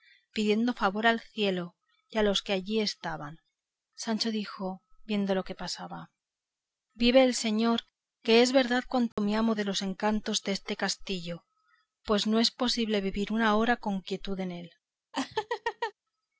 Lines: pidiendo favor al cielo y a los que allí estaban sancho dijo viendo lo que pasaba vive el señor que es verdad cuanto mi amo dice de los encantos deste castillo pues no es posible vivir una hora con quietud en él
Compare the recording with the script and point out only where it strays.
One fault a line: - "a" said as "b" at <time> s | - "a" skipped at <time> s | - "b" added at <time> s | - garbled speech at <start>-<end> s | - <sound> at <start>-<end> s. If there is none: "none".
- dropout at 9.1-9.2 s
- "dice" skipped at 9.5 s
- laugh at 15.1-15.9 s